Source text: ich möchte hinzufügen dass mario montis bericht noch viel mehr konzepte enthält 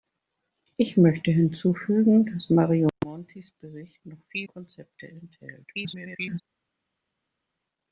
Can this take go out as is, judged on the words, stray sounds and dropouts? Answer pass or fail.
fail